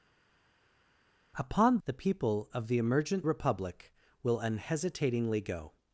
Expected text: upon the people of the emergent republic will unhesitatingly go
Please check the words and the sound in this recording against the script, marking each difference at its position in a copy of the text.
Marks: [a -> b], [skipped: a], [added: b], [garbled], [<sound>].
upon the people of the emergent republic will unhesitatingly go